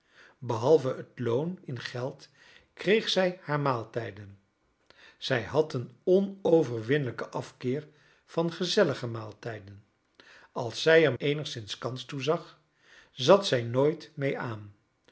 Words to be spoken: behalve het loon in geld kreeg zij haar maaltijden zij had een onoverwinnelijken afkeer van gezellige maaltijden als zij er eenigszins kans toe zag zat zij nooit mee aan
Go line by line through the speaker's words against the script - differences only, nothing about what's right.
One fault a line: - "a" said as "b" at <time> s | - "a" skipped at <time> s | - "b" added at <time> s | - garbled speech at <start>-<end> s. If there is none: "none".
none